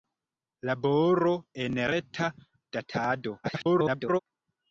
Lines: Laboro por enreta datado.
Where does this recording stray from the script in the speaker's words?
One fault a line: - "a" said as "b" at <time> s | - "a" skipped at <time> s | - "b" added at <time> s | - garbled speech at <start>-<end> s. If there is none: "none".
- "por" skipped at 1.3 s
- garbled speech at 3.4-4.2 s